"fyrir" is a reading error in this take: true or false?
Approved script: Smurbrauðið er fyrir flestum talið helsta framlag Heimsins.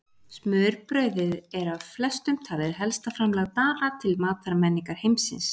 true